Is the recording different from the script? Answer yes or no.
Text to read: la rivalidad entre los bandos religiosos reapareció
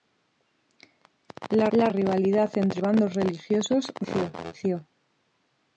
yes